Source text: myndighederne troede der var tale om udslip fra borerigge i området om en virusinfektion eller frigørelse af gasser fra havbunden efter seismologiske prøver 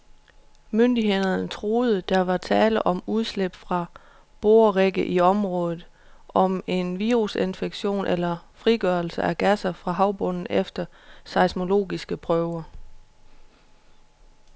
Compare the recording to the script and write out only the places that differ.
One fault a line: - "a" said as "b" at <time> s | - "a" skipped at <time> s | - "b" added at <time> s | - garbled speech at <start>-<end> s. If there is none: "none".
none